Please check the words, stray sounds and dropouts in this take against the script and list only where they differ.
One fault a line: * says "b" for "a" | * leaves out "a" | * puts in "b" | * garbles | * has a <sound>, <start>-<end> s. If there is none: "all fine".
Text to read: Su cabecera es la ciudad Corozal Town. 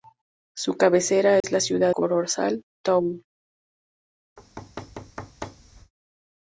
* has a dropout, 1.4-1.4 s
* has a thud, 4.4-5.9 s